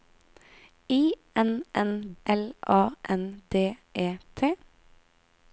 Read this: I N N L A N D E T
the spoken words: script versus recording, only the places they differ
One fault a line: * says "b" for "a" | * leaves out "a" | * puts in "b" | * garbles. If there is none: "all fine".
all fine